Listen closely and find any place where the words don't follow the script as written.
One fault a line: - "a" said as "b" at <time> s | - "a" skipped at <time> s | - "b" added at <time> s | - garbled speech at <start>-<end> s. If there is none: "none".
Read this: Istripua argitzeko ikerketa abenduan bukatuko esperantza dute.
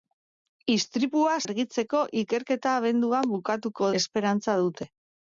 none